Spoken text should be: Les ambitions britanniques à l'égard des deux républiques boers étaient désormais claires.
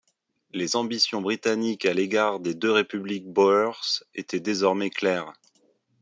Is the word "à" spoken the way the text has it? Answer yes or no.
yes